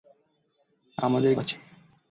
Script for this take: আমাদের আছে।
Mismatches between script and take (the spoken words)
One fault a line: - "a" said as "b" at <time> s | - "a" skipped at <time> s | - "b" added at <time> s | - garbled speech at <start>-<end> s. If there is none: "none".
none